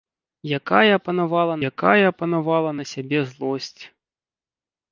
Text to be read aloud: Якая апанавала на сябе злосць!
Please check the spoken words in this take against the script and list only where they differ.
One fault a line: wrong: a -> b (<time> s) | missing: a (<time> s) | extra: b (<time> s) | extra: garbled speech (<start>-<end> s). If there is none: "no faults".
extra: якая апанавала (1.7 s)